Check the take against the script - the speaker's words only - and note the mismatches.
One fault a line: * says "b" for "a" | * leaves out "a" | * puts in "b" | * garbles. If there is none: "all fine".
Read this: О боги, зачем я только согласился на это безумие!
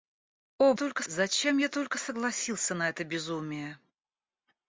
* says "только" for "боги"